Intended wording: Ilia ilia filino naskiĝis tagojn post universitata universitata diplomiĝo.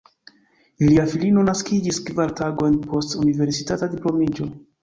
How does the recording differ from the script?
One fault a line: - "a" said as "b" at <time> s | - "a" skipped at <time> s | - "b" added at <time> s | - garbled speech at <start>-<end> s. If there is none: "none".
- "ilia" skipped at 1.0 s
- "kvar" added at 2.1 s
- "universitata" skipped at 3.9 s